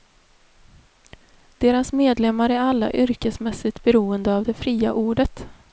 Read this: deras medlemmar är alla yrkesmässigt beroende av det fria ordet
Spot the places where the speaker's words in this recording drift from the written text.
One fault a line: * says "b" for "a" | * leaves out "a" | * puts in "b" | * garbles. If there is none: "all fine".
all fine